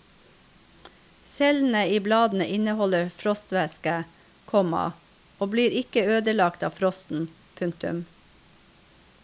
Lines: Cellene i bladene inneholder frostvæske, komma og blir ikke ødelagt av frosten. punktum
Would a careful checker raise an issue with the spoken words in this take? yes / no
no